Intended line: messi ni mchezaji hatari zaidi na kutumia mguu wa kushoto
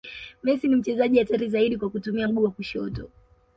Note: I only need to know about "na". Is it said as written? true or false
false